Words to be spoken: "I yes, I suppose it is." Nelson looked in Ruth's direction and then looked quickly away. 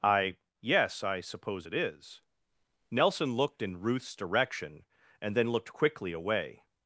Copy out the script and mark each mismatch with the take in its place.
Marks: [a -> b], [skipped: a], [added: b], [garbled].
"I yes, I suppose it is." Nelson looked in Ruth's direction and then looked quickly away.